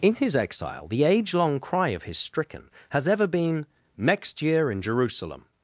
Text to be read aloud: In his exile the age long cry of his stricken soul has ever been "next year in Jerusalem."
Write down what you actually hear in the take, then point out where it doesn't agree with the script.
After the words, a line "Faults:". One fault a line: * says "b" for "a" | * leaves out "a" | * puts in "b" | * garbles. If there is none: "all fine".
In his exile the age long cry of his stricken has ever been "next year in Jerusalem."
Faults:
* leaves out "soul"